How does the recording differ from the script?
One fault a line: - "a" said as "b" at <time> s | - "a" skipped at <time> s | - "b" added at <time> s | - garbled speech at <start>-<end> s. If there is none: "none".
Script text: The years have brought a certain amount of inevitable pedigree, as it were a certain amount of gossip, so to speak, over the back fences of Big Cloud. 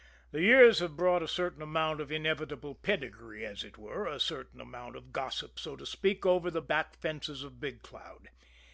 none